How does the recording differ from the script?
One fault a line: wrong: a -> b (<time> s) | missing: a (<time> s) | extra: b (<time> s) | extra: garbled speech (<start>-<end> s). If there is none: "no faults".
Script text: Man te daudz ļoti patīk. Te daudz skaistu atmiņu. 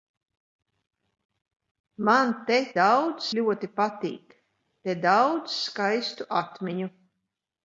no faults